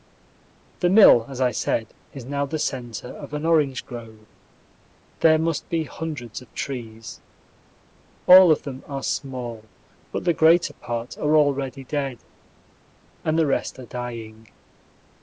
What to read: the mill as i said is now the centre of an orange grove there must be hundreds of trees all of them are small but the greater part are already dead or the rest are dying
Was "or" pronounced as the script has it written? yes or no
no